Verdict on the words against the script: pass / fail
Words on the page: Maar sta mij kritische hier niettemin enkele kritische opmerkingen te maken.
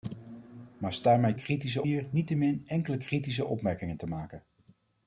pass